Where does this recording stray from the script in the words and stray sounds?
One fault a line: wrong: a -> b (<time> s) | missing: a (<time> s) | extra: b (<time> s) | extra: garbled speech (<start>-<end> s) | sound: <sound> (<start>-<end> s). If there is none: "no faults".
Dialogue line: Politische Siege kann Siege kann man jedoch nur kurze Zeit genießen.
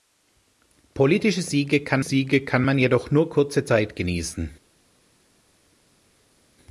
no faults